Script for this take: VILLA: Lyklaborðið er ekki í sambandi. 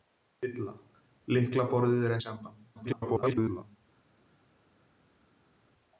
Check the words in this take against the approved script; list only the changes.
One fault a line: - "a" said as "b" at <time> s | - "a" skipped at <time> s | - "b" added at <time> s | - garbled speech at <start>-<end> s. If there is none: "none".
- "ekki" skipped at 2.2 s
- garbled speech at 2.7-3.8 s